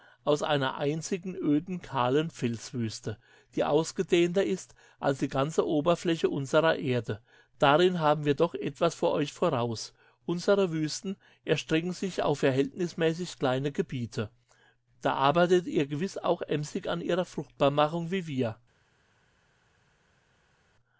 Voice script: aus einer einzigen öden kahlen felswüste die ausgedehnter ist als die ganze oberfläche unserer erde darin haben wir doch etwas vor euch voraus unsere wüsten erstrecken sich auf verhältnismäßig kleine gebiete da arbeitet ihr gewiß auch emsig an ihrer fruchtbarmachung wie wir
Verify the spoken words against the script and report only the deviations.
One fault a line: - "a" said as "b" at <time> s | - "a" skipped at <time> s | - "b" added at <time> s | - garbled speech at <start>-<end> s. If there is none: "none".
none